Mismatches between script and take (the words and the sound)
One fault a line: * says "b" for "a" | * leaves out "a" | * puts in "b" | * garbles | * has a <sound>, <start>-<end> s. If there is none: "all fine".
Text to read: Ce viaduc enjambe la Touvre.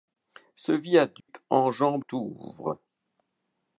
* has a dropout, 1.2-1.3 s
* leaves out "la"